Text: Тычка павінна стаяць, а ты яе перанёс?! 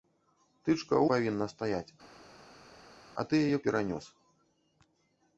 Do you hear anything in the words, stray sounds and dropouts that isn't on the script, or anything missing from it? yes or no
no